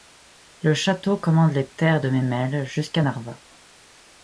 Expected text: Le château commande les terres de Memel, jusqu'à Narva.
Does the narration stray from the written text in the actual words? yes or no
no